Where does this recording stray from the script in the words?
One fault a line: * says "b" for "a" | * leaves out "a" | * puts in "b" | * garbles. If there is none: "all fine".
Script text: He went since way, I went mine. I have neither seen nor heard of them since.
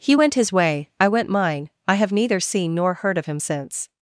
* says "his" for "since"
* says "him" for "them"